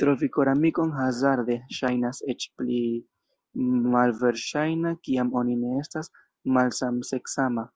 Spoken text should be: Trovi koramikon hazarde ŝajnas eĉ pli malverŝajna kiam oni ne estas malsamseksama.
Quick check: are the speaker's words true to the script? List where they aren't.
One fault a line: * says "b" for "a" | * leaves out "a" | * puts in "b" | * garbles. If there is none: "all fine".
all fine